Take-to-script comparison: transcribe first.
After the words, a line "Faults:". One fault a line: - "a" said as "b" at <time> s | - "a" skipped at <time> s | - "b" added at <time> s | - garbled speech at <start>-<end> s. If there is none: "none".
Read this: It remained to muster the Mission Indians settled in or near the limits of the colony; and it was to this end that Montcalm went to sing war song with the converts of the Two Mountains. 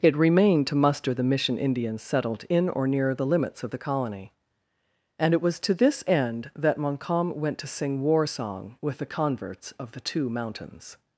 It remained to muster the Mission Indians settled in or near the limits of the colony; and it was to this end that Montcalm went to sing war song with the converts of the Two Mountains.
Faults:
none